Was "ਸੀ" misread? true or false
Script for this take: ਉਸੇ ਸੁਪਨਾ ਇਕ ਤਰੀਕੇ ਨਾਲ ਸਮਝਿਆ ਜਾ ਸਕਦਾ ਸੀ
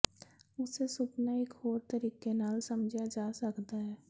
true